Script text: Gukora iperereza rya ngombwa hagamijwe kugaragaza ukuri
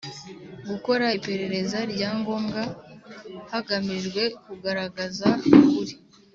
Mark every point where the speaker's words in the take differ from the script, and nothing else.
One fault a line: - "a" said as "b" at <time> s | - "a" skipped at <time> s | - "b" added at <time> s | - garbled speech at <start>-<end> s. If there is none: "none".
none